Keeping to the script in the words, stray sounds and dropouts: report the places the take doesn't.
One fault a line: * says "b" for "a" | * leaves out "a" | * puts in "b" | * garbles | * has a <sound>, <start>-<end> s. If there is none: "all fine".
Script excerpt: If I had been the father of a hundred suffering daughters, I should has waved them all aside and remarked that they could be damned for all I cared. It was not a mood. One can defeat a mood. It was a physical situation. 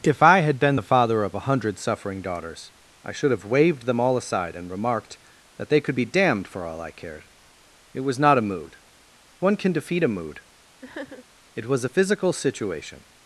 * says "have" for "has"
* has a sniff, 10.8-11.3 s